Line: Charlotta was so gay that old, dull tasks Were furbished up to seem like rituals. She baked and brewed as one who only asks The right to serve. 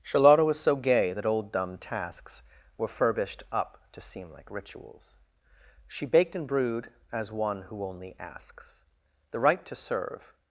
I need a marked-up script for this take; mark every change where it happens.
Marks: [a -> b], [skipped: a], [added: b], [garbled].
Charlotta was so gay that old, [dull -> dumb] tasks Were furbished up to seem like rituals. She baked and brewed as one who only asks The right to serve.